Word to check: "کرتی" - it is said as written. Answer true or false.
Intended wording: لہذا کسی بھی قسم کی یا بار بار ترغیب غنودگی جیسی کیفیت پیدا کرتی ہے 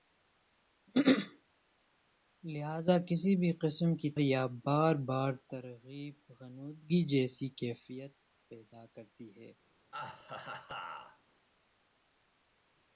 true